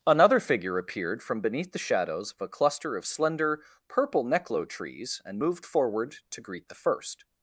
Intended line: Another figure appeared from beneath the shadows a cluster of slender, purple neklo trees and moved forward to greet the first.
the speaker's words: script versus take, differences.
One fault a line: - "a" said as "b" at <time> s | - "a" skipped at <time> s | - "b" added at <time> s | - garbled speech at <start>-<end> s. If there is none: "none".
- "of" added at 2.3 s